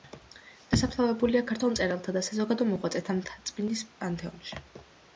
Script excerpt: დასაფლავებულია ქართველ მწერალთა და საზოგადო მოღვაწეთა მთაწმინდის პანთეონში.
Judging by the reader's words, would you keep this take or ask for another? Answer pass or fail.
pass